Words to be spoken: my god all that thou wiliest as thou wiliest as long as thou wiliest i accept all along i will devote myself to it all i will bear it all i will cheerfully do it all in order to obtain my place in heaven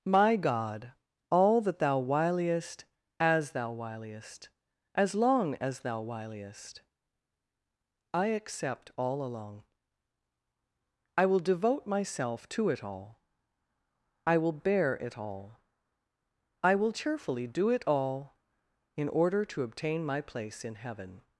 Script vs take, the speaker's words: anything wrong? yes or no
no